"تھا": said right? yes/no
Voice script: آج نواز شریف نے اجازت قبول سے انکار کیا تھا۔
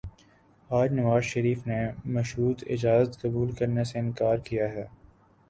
no